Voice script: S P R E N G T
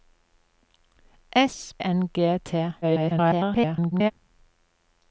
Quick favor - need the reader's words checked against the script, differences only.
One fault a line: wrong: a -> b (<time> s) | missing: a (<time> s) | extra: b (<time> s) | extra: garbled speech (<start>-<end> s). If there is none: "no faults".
missing: P R E (1.8 s)
extra: garbled speech (2.8-4.1 s)